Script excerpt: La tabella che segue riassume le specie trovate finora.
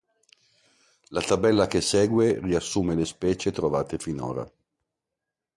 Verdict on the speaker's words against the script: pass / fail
pass